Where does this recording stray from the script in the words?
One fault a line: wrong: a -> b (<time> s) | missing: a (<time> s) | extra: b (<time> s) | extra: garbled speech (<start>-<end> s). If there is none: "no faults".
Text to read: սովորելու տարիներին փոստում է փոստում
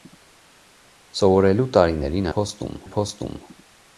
no faults